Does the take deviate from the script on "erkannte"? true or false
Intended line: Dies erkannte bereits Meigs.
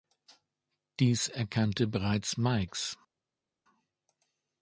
false